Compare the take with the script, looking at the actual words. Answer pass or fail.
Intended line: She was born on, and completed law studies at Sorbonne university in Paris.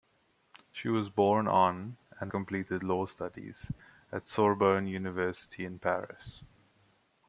pass